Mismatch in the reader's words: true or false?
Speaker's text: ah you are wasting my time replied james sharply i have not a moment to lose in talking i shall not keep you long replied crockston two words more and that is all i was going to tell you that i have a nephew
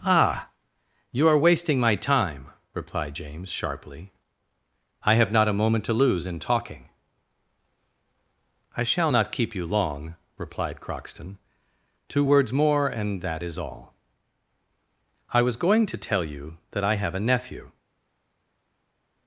false